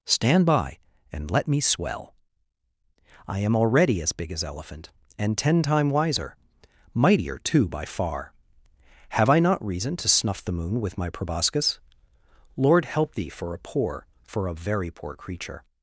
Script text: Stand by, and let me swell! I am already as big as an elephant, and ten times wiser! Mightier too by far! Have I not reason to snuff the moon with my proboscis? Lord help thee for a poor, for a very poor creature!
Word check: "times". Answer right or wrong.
wrong